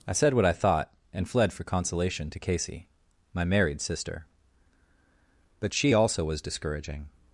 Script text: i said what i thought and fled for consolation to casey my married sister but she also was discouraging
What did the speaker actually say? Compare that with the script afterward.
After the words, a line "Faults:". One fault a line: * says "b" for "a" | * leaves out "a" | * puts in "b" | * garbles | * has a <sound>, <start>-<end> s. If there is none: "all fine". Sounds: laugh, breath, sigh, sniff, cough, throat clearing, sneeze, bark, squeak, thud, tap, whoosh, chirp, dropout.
i said what i thought and fled for consolation to casey my married sister but she also was discouraging
Faults:
all fine